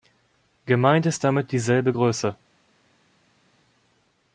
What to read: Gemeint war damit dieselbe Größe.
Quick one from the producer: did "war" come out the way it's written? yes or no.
no